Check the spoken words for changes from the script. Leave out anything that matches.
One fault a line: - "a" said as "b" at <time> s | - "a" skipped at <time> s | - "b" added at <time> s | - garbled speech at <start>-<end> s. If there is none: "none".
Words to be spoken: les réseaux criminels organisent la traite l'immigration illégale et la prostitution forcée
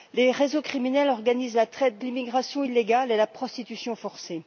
none